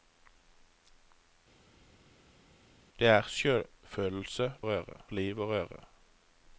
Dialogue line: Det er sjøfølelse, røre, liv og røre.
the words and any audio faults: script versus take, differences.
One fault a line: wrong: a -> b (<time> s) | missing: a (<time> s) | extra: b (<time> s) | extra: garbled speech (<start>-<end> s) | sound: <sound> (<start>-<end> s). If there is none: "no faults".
no faults